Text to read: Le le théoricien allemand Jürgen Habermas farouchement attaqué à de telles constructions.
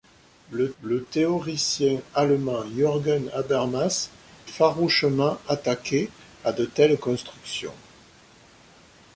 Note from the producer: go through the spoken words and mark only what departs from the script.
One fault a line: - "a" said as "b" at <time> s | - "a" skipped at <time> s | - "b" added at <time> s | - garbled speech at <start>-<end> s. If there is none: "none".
none